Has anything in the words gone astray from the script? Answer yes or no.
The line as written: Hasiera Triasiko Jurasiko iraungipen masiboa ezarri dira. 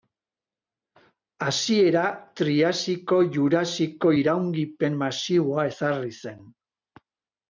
yes